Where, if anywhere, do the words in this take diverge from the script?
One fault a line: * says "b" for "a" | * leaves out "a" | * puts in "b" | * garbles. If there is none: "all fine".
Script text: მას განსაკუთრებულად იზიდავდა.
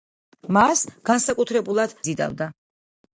all fine